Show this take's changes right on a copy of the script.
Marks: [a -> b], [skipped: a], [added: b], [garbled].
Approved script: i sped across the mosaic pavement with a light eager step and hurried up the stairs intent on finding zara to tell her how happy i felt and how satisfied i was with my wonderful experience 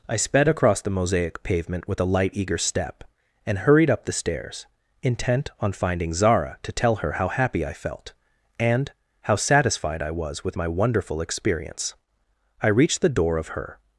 i sped across the mosaic pavement with a light eager step and hurried up the stairs intent on finding zara to tell her how happy i felt and how satisfied i was with my wonderful experience [added: i reached the door of her]